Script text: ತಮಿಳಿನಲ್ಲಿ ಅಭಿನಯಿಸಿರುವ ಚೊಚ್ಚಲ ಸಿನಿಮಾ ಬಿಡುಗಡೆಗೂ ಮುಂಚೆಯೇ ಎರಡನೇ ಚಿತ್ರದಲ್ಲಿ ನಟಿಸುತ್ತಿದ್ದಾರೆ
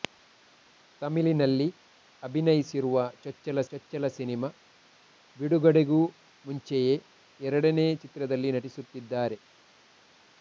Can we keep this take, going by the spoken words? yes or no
no